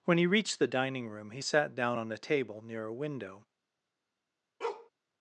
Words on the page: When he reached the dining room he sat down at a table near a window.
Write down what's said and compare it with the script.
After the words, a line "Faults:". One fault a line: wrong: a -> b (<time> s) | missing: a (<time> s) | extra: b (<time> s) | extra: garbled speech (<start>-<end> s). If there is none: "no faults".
When he reached the dining room he sat down on a table near a window.
Faults:
wrong: at -> on (1.9 s)